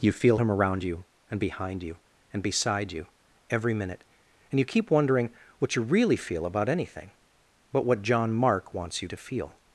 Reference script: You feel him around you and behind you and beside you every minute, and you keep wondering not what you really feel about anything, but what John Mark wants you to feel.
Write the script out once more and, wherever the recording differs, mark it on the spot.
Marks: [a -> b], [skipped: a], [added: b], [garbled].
You feel him around you and behind you and beside you every minute, and you keep wondering [skipped: not] what you really feel about anything, but what John Mark wants you to feel.